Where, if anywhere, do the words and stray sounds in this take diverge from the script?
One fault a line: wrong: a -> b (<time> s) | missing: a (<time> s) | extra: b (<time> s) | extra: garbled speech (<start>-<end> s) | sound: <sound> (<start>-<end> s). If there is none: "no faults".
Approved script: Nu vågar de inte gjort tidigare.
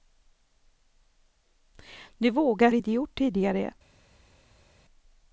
no faults